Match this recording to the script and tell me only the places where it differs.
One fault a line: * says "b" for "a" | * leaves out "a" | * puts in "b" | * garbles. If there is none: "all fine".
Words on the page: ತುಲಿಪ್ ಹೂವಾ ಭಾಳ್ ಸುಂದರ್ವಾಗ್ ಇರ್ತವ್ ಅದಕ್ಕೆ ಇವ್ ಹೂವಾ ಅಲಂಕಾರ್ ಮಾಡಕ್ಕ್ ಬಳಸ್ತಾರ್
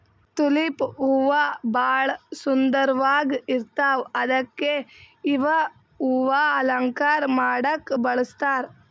all fine